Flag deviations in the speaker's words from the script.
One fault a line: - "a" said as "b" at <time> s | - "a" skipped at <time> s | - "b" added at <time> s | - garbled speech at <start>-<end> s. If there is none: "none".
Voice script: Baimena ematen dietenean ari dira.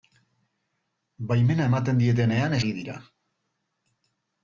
none